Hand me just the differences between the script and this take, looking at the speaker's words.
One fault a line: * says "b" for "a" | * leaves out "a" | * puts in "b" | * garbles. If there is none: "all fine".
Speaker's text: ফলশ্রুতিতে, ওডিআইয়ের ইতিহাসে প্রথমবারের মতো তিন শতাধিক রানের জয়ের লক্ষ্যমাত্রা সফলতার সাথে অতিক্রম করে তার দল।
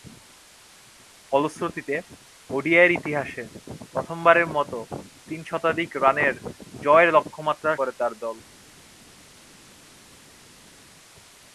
* leaves out "সফলতার সাথে অতিক্রম"